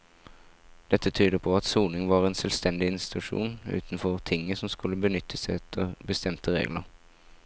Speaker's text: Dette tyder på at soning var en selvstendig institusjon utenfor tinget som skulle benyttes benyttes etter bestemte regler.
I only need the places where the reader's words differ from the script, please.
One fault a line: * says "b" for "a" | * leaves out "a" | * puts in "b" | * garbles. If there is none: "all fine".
* leaves out "benyttes"